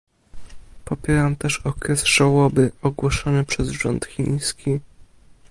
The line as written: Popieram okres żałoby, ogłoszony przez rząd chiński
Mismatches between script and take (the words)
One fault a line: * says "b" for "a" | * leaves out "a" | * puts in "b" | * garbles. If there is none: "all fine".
* puts in "też"